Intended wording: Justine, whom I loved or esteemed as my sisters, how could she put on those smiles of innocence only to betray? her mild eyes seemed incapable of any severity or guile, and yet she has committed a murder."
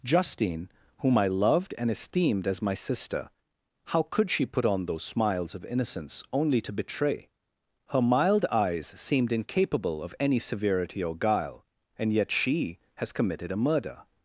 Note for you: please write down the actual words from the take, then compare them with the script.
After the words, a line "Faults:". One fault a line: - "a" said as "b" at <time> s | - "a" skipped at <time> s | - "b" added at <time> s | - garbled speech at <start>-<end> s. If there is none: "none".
Justine, whom I loved and esteemed as my sister, how could she put on those smiles of innocence only to betray? her mild eyes seemed incapable of any severity or guile, and yet she has committed a murder."
Faults:
- "or" said as "and" at 1.8 s
- "sisters" said as "sister" at 2.7 s